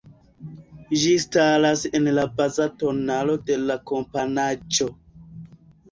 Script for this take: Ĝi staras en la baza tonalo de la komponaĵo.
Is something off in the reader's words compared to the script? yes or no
no